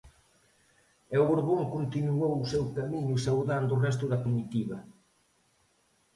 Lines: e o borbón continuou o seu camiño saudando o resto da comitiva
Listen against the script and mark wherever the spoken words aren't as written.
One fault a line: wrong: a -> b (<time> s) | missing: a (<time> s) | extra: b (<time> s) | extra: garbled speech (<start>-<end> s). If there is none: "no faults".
no faults